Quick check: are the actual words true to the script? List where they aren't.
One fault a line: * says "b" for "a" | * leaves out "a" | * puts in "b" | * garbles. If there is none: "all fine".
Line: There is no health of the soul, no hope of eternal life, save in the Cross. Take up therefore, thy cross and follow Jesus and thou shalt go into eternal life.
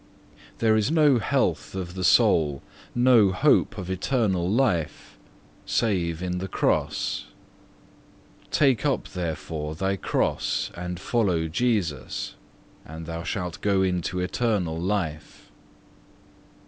all fine